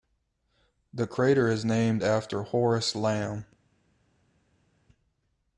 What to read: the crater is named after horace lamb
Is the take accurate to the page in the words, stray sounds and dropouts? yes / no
yes